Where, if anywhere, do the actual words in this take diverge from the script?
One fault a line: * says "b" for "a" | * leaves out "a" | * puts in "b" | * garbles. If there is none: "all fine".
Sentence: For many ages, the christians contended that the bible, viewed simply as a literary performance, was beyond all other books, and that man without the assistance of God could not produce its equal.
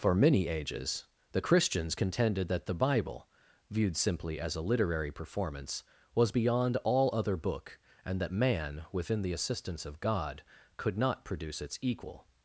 * says "book" for "books"
* says "within" for "without"